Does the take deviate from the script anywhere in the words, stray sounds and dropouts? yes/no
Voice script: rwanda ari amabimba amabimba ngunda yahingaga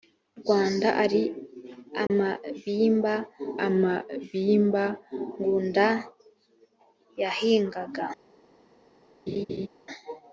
yes